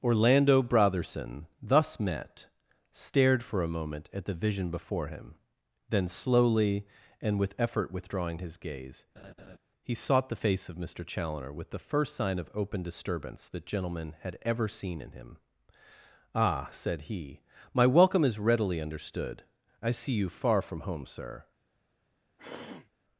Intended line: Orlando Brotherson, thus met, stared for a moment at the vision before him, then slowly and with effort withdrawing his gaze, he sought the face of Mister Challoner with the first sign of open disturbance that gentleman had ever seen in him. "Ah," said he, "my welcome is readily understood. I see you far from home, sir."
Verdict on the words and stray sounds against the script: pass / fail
fail